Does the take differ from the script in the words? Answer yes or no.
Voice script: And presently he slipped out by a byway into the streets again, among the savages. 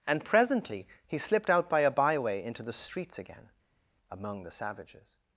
no